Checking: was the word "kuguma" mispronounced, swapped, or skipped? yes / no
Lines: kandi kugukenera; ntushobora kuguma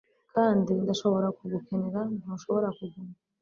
no